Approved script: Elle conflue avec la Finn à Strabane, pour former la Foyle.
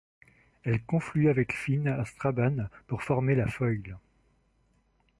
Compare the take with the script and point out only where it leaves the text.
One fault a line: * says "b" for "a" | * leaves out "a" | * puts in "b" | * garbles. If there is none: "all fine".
* leaves out "la"